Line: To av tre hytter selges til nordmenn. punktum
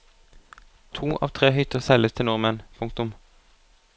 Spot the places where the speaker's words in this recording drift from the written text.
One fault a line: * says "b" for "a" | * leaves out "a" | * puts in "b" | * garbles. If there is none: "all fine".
all fine